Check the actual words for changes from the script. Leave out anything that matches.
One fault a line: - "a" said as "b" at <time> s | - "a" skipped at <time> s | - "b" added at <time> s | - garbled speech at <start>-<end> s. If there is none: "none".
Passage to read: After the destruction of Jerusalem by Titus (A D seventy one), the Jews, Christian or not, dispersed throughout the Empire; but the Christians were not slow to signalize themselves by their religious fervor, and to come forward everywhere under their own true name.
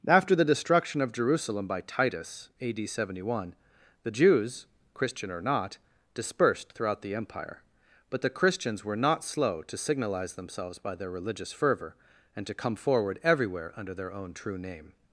none